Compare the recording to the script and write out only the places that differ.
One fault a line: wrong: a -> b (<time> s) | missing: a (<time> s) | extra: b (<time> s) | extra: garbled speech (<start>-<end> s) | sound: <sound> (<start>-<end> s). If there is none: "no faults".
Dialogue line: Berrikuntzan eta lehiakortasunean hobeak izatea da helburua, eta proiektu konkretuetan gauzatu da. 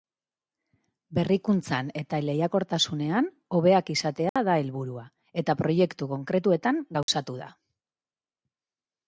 sound: dropout (4.3-4.4 s)
sound: dropout (7.0-7.1 s)